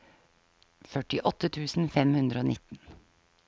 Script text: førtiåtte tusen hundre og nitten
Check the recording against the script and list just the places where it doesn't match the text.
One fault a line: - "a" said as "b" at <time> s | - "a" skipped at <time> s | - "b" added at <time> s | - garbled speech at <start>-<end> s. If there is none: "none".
- "fem" added at 2.0 s